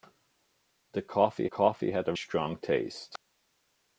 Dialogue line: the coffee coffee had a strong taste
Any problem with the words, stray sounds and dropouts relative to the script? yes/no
no